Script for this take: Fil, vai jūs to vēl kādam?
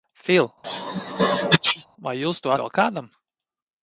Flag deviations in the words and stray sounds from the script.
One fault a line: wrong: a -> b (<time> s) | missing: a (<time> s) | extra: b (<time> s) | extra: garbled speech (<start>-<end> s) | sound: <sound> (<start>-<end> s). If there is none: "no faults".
sound: sneeze (0.6-1.9 s)